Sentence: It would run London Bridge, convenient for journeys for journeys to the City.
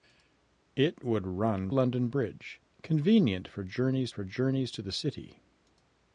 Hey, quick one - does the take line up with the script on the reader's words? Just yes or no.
yes